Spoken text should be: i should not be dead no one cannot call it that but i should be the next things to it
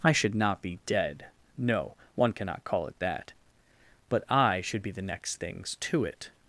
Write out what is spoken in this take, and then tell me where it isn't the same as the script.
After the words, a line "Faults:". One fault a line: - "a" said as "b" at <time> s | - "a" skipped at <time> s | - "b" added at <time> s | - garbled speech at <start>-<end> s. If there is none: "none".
i should not be dead no one cannot call it that but i should be the next things to it
Faults:
none